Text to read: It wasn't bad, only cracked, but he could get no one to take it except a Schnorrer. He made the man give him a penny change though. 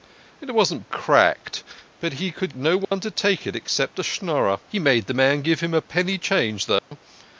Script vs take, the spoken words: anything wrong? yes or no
yes